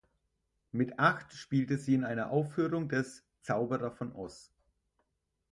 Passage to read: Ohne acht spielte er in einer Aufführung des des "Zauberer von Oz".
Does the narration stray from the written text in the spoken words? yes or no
yes